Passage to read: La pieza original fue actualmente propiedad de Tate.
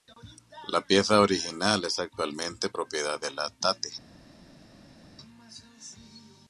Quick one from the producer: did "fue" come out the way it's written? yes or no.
no